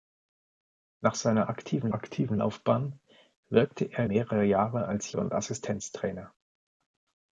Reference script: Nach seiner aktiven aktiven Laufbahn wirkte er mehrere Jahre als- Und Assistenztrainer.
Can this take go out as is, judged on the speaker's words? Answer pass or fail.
pass